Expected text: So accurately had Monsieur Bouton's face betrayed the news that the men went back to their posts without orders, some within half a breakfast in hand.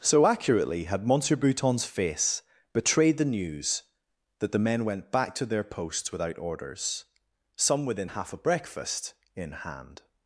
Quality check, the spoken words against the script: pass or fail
pass